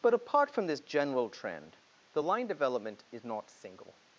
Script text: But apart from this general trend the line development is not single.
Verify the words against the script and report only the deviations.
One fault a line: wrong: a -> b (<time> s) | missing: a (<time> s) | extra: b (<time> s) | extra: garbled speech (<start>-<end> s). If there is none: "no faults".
no faults